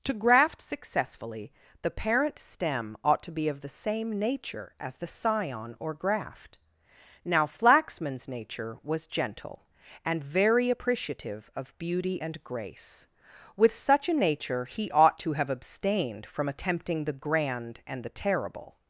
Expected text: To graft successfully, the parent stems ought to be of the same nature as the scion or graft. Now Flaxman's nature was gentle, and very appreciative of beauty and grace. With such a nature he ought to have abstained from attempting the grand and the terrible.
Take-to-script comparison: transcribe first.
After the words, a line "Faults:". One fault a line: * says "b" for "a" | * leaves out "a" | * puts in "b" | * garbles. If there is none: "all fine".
To graft successfully, the parent stem ought to be of the same nature as the scion or graft. Now Flaxman's nature was gentle, and very appreciative of beauty and grace. With such a nature he ought to have abstained from attempting the grand and the terrible.
Faults:
* says "stem" for "stems"